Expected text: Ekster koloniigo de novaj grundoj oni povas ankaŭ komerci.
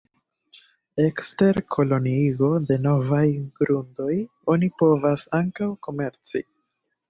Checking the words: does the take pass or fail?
pass